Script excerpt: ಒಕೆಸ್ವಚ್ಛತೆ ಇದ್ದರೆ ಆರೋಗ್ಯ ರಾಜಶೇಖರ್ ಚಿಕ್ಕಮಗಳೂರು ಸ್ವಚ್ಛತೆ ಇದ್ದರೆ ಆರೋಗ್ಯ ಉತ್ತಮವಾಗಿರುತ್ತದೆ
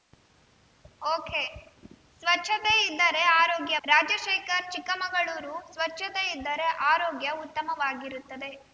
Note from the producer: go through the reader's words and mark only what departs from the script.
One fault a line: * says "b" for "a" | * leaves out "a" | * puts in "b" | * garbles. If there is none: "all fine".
all fine